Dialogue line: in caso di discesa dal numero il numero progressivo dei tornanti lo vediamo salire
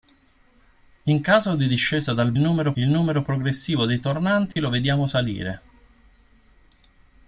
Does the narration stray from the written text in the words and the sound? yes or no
yes